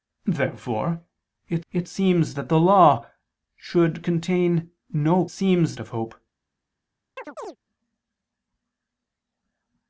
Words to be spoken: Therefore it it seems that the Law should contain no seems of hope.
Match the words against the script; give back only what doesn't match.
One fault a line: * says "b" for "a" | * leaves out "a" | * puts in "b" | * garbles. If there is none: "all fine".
all fine